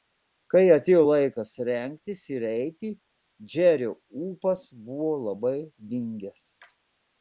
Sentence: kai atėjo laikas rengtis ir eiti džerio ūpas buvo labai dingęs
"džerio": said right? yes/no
yes